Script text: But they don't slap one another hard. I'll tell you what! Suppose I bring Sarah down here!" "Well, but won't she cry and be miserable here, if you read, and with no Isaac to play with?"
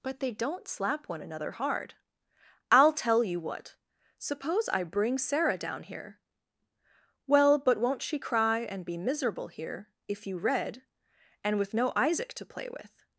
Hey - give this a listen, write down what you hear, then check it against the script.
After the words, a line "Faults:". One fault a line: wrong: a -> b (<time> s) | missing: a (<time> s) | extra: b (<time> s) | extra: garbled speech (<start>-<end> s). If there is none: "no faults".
But they don't slap one another hard. I'll tell you what! Suppose I bring Sarah down here!" "Well, but won't she cry and be miserable here, if you read, and with no Isaac to play with?"
Faults:
no faults